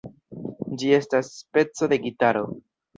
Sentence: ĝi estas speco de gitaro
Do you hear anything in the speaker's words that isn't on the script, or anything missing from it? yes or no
no